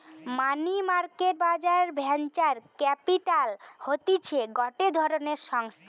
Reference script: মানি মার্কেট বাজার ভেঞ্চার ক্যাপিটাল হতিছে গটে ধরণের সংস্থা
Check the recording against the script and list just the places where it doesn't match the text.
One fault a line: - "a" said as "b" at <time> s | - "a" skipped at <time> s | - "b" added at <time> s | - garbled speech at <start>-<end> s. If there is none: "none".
none